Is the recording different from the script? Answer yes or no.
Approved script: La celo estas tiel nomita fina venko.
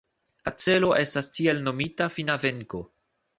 no